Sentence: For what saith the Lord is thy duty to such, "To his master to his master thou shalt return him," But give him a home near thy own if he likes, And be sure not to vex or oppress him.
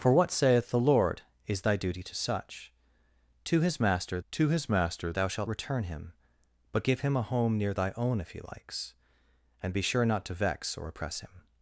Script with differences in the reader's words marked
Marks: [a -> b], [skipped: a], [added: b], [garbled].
For what saith the Lord is thy duty to such, "To his master to his master thou shalt return him," But give him a home near thy own if he likes, And be sure not to vex or oppress him.